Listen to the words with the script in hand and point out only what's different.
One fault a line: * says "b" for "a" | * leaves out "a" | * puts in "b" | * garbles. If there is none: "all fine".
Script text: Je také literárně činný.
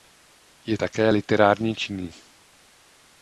all fine